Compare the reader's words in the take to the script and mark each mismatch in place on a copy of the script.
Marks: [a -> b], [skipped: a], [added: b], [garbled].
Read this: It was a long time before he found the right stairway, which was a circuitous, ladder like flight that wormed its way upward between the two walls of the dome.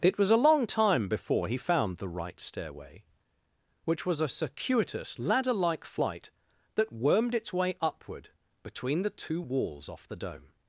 It was a long time before he found the right stairway, which was a circuitous, ladder like flight that wormed its way upward between the two walls [of -> off] the dome.